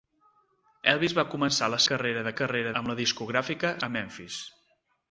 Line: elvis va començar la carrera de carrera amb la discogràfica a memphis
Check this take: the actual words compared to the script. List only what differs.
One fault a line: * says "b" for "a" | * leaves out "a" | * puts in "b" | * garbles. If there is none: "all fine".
all fine